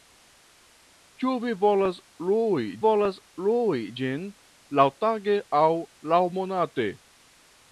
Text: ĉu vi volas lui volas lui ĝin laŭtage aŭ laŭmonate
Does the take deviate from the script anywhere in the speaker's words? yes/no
no